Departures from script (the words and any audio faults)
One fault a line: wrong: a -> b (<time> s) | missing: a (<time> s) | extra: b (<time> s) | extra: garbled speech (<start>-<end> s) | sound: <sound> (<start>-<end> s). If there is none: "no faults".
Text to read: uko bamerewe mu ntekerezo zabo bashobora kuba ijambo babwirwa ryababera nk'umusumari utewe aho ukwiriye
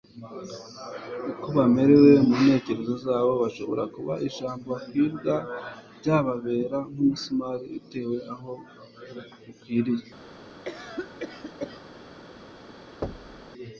sound: cough (10.6-11.8 s)
sound: thud (13.0-13.5 s)